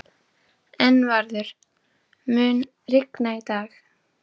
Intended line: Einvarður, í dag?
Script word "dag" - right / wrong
right